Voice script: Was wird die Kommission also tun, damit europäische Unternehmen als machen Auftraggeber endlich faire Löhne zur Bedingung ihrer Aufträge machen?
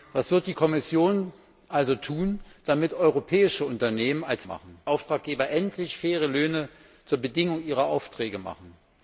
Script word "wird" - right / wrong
right